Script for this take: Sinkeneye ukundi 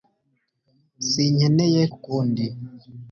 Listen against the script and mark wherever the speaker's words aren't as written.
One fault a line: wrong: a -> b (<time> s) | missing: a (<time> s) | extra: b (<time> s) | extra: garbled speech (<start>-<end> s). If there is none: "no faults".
no faults